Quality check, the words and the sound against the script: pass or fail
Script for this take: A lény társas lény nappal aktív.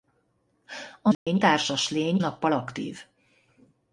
fail